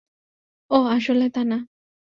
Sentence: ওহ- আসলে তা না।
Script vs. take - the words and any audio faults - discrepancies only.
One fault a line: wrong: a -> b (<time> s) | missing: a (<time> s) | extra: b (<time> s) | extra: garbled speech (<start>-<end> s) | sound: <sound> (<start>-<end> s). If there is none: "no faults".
no faults